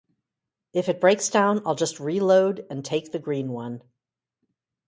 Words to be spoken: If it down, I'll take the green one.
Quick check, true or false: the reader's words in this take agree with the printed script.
false